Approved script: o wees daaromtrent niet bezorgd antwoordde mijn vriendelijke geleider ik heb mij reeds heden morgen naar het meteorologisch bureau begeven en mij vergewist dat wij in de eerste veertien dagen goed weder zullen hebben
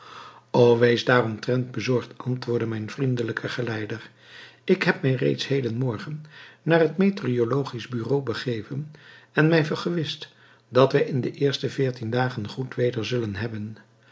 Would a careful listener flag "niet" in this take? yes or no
yes